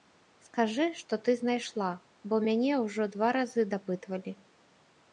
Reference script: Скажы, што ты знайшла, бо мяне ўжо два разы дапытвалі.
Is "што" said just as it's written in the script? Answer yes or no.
yes